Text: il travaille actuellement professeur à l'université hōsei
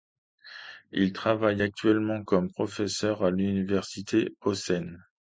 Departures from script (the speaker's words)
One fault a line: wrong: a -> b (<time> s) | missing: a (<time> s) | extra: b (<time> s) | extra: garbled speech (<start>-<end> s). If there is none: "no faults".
extra: comme (2.2 s)